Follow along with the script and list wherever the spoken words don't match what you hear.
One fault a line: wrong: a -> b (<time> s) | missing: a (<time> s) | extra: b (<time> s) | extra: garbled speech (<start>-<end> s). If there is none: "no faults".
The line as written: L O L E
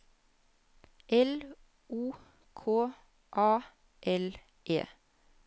extra: K A (2.5 s)